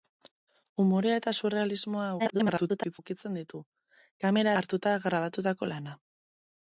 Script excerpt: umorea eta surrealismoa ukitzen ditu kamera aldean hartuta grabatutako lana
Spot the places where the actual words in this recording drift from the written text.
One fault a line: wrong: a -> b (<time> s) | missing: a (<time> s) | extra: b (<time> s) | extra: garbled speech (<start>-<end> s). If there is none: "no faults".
extra: garbled speech (2.2-3.0 s)
missing: aldean (4.5 s)